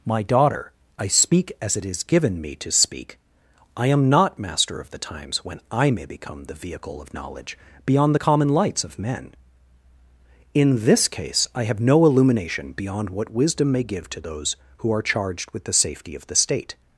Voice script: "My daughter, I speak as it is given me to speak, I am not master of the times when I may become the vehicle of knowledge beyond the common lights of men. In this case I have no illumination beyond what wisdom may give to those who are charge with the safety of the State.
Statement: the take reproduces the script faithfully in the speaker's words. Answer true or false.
false